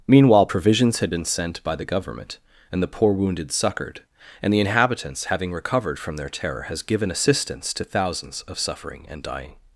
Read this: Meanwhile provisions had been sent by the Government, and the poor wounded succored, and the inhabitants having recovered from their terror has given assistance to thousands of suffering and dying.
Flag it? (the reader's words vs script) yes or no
no